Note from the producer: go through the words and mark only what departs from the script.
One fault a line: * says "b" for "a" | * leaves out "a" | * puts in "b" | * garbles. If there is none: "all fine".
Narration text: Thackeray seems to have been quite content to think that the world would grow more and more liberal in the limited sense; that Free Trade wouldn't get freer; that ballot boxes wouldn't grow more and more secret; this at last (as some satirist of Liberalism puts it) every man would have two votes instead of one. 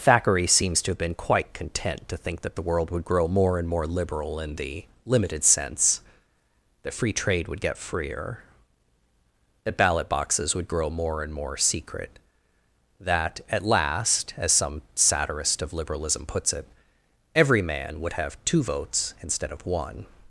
* says "would" for "wouldn't"
* says "would" for "wouldn't"
* says "that" for "this"